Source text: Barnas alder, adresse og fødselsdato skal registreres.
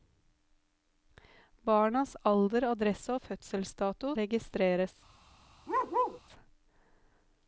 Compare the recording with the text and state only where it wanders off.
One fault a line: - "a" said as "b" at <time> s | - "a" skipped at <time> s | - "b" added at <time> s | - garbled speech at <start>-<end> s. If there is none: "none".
- "skal" skipped at 4.1 s